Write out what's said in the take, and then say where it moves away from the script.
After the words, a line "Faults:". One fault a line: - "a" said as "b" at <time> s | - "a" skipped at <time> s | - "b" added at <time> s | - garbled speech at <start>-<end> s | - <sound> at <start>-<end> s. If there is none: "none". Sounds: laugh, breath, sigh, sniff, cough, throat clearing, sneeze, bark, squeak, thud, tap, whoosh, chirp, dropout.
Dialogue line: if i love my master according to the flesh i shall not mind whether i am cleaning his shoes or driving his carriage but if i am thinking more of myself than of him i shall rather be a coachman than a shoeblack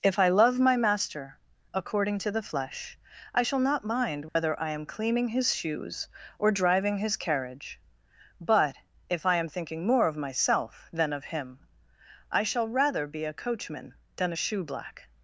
if i love my master according to the flesh i shall not mind whether i am cleaning his shoes or driving his carriage but if i am thinking more of myself than of him i shall rather be a coachman than a shoeblack
Faults:
- dropout at 4.3-4.4 s